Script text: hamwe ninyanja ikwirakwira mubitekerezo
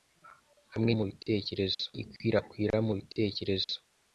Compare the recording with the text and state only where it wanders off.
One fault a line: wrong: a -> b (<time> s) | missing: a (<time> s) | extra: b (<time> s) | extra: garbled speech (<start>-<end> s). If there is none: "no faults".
wrong: ninyanja -> mubitekerezo (1.0 s)